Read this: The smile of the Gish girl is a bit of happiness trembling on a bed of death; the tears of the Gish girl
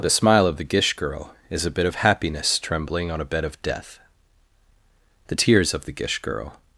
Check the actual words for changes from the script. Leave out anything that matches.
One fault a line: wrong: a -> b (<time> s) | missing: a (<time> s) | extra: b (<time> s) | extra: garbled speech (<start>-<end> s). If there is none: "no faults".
no faults